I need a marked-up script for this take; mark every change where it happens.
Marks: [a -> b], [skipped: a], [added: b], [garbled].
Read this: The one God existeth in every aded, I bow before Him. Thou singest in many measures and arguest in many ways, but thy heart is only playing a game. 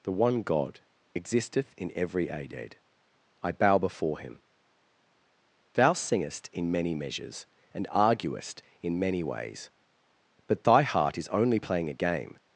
The one God existeth in every aded, I bow before Him. Thou singest in many measures and arguest in many ways, but thy heart is only playing a game.